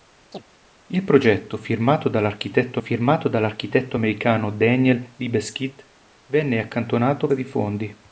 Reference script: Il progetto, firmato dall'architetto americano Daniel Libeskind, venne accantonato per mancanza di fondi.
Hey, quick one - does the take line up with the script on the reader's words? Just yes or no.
no